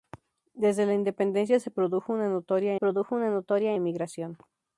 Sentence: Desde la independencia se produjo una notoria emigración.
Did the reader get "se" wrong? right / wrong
right